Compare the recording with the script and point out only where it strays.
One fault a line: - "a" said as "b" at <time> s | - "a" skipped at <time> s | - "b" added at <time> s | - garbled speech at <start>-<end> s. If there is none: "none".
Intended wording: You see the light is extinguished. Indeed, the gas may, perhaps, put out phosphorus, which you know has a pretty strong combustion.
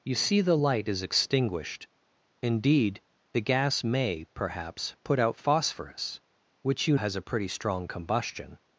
- "know" skipped at 7.0 s